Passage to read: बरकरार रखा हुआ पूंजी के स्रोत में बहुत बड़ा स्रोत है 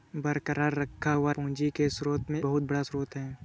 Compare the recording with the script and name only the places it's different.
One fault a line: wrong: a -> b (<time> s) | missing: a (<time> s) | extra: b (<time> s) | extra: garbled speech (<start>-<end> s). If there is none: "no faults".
no faults